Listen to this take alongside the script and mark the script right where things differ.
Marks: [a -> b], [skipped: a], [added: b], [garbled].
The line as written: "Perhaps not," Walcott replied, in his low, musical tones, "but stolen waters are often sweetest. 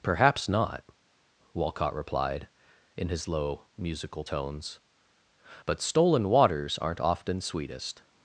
"Perhaps not," Walcott replied, in his low, musical tones, "but stolen waters [are -> aren't] often sweetest.